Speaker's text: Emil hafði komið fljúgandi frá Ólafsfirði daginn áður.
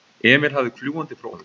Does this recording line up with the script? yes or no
no